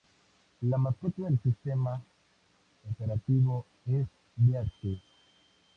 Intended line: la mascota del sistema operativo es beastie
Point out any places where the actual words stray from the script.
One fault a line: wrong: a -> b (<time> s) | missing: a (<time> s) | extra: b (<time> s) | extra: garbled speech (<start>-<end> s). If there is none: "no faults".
no faults